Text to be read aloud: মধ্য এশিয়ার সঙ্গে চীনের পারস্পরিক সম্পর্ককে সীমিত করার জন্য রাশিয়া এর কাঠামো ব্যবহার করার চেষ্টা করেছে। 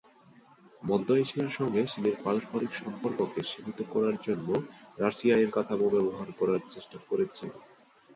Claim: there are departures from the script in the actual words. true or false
false